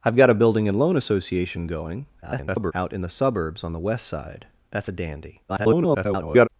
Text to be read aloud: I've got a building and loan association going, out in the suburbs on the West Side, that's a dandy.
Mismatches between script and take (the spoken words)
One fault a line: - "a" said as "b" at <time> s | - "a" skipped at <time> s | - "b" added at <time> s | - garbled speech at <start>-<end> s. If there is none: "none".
- garbled speech at 2.2-2.7 s
- garbled speech at 5.5-6.5 s